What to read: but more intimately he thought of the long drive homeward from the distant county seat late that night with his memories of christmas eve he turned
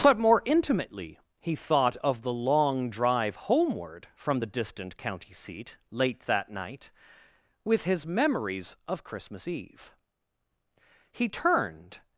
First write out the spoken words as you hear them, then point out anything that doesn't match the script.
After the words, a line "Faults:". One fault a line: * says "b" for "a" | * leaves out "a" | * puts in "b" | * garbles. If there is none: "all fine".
but more intimately he thought of the long drive homeward from the distant county seat late that night with his memories of christmas eve he turned
Faults:
all fine